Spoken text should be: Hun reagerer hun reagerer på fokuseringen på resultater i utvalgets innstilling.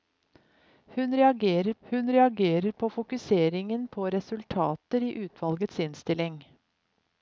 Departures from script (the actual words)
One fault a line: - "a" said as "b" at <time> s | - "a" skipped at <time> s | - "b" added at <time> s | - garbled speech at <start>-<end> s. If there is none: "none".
none